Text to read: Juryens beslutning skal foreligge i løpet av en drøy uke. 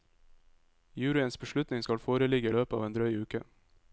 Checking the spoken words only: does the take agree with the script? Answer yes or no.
yes